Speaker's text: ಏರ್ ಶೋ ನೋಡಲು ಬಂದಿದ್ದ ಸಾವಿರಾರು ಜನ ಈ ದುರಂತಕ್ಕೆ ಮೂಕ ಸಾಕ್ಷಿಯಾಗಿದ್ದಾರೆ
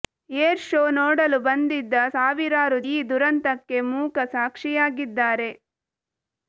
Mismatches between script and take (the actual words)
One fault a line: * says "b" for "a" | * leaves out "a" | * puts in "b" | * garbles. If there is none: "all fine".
* leaves out "ಜನ"